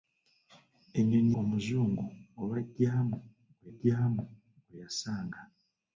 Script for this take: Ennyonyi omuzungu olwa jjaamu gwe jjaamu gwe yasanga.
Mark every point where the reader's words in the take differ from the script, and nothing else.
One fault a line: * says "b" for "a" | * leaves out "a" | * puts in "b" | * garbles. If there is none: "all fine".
all fine